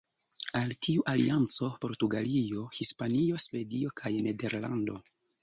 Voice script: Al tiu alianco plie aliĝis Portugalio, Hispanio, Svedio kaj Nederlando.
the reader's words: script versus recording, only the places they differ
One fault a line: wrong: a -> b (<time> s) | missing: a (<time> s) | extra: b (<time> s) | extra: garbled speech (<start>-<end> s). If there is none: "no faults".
missing: plie aliĝis (1.7 s)